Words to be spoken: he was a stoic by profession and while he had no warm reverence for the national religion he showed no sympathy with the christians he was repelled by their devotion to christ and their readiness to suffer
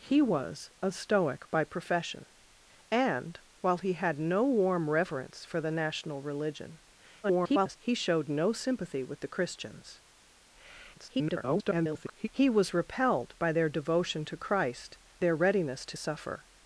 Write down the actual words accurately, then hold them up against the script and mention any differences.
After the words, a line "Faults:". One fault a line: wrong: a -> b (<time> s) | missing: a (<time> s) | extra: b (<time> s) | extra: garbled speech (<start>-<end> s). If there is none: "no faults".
he was a stoic by profession and while he had no warm reverence for the national religion [garbled] he showed no sympathy with the christians [garbled] he was repelled by their devotion to christ their readiness to suffer
Faults:
extra: garbled speech (7.2-7.8 s)
extra: garbled speech (10.9-12.3 s)
missing: and (15.0 s)